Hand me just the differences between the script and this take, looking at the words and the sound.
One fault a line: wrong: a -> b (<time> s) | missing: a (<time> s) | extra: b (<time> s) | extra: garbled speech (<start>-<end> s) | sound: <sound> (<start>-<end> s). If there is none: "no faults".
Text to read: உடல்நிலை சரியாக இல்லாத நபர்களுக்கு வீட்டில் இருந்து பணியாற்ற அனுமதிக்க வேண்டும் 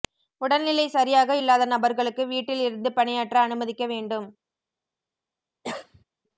sound: cough (5.6-6.0 s)